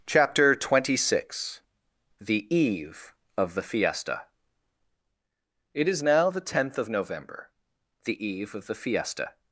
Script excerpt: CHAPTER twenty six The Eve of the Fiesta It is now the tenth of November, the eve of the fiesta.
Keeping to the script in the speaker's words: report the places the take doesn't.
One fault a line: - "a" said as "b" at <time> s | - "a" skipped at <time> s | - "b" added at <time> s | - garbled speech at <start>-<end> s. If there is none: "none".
none